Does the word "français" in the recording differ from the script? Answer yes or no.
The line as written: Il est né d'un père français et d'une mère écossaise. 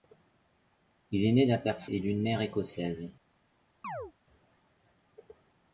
yes